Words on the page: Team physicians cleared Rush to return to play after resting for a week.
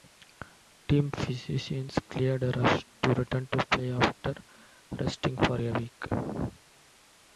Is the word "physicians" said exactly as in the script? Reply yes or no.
yes